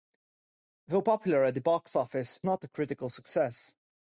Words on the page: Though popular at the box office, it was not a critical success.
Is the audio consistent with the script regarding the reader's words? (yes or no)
no